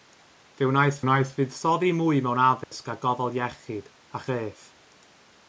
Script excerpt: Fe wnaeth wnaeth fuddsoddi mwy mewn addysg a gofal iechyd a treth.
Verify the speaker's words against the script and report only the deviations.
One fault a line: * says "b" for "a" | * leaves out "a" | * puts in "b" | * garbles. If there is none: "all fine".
all fine